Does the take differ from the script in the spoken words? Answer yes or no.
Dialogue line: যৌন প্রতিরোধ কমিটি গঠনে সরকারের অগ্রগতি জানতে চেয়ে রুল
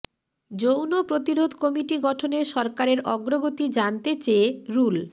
no